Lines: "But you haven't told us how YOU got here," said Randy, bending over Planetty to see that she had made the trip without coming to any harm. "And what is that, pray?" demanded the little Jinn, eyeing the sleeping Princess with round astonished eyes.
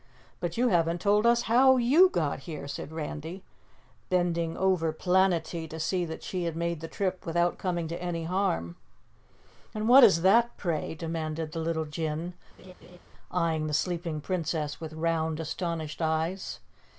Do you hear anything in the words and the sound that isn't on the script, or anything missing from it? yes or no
yes